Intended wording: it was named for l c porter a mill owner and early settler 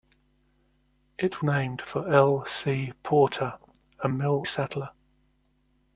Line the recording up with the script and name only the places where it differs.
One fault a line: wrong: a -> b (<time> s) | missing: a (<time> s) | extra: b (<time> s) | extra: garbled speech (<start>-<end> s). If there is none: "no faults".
missing: was (1.4 s)
missing: owner and early (4.5 s)